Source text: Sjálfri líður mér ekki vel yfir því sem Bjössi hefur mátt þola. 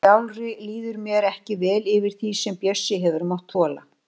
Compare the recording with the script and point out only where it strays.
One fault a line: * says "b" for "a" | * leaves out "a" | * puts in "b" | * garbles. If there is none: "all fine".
all fine